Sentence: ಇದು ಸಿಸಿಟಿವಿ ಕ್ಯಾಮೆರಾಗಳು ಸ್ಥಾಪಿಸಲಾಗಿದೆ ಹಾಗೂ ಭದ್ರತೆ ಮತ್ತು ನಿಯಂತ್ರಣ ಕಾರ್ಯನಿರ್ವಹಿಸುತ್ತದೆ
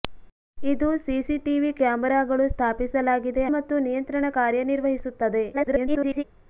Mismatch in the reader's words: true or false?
true